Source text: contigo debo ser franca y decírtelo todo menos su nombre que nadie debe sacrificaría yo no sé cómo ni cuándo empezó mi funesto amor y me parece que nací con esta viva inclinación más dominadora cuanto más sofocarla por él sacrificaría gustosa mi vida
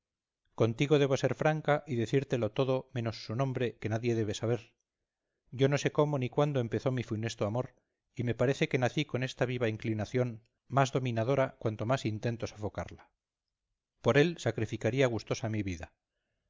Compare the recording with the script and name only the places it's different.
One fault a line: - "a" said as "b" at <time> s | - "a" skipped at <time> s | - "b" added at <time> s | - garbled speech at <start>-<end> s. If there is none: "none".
- "sacrificaría" said as "saber" at 4.3 s
- "intento" added at 12.0 s